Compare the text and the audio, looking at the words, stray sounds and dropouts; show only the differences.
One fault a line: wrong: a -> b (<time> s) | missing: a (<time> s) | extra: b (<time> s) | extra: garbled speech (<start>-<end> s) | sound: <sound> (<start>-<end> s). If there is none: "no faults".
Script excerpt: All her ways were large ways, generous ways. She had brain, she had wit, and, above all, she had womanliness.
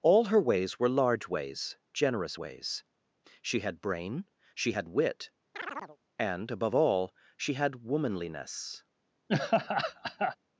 sound: chirp (5.5-6.0 s)
sound: laugh (9.3-10.4 s)